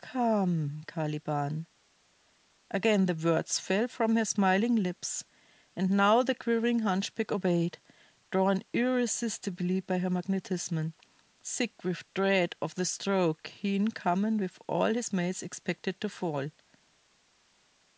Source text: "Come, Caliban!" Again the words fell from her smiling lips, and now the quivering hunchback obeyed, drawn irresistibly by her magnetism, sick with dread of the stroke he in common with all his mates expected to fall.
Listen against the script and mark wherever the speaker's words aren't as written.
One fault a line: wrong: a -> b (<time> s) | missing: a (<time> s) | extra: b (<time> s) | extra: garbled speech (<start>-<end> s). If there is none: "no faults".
no faults